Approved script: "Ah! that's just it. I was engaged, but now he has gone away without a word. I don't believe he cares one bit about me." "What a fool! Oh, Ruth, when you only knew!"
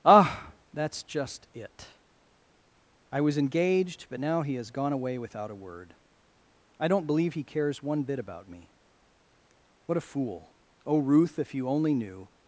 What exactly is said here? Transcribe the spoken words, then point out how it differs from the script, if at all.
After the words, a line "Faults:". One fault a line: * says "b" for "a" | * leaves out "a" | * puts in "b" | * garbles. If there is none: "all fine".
"Ah! that's just it. I was engaged, but now he has gone away without a word. I don't believe he cares one bit about me." "What a fool! Oh, Ruth, if you only knew!"
Faults:
* says "if" for "when"